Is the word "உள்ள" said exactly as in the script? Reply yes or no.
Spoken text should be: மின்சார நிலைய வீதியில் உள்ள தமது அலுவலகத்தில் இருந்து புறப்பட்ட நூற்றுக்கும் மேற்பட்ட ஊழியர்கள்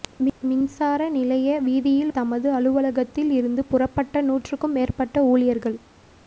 no